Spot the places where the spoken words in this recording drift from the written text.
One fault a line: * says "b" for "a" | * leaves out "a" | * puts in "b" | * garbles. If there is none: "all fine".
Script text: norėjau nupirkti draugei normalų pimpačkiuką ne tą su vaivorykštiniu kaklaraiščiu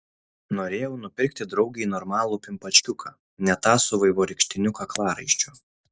all fine